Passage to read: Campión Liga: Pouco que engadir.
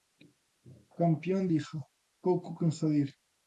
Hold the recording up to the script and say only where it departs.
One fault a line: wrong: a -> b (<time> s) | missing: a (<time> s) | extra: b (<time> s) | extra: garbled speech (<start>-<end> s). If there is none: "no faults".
no faults